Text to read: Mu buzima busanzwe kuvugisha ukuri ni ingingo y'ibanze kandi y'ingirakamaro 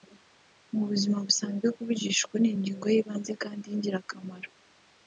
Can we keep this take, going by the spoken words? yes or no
yes